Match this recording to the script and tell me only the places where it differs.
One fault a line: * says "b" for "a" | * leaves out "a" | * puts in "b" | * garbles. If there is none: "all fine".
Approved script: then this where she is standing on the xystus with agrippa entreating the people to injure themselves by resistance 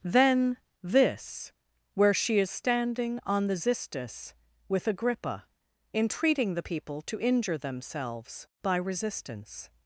all fine